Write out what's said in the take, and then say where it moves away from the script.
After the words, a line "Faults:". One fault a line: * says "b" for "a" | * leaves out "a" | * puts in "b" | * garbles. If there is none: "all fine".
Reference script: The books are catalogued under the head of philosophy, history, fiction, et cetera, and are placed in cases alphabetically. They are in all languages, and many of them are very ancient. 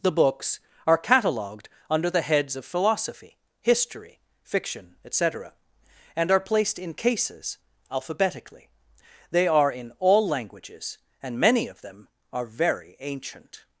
The books are catalogued under the heads of philosophy, history, fiction, et cetera, and are placed in cases alphabetically. They are in all languages, and many of them are very ancient.
Faults:
* says "heads" for "head"